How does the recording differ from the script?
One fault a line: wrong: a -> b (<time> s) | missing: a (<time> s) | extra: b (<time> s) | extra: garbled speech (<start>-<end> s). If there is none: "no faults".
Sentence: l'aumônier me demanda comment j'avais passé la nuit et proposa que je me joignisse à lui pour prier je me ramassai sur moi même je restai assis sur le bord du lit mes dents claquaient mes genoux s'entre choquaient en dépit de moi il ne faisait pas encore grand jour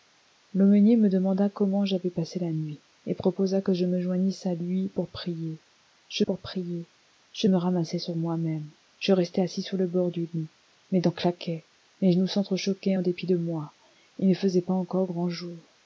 extra: pour prier je (6.2 s)